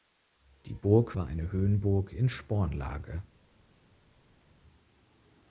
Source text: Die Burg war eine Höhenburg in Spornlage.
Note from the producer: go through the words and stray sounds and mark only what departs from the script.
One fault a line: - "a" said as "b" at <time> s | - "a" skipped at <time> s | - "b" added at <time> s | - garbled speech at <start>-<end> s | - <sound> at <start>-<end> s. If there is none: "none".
none